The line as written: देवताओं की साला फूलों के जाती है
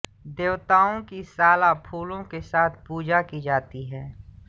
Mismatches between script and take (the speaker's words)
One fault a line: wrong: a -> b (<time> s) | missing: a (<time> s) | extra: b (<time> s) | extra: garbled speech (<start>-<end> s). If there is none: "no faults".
extra: साथ पूजा की (2.4 s)